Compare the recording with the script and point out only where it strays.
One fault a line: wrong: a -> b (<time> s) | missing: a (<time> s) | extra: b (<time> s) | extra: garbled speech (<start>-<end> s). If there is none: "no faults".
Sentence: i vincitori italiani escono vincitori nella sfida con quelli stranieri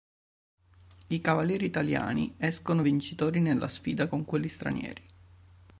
wrong: vincitori -> cavalieri (1.2 s)